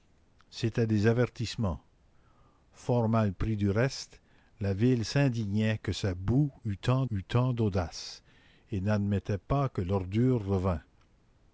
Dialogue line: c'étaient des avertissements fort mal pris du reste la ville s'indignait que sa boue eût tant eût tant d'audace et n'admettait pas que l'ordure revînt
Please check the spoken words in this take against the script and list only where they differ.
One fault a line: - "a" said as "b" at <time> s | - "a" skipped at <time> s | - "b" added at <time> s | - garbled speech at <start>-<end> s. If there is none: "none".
none